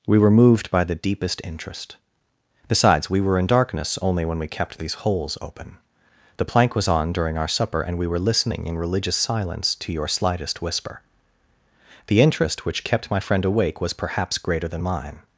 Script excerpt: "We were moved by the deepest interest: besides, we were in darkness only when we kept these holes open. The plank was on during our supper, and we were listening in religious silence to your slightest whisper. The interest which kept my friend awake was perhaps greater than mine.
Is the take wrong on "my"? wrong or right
right